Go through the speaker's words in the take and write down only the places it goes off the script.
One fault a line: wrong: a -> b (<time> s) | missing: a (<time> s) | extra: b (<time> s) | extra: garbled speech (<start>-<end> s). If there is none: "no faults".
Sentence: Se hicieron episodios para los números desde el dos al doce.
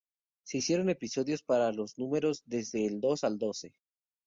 no faults